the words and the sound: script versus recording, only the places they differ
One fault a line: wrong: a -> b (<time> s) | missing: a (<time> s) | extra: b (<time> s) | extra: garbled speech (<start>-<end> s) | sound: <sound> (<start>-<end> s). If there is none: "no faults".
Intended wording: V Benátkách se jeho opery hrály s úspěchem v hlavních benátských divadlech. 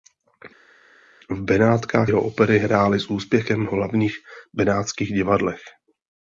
missing: se (2.1 s)